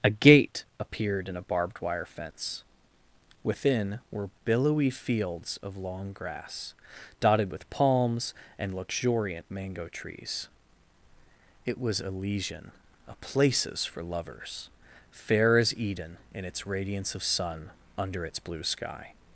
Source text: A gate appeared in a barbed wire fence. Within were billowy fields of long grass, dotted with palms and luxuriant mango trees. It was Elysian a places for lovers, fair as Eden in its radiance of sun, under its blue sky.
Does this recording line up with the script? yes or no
yes